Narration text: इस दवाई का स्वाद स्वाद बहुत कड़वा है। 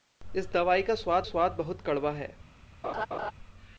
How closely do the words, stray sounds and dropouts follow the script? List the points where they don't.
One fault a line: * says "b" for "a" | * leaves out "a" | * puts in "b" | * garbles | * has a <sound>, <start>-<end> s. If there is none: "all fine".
* has a laugh, 2.8-3.3 s